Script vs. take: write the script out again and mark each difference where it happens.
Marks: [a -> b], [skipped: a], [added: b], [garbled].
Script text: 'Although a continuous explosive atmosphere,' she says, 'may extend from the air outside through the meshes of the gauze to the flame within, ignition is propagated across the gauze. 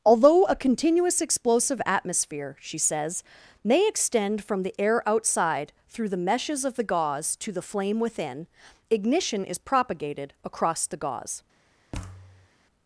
'Although a continuous explosive atmosphere,' she says, 'may extend from the air outside through the meshes of the gauze to the flame within, ignition is propagated across the gauze.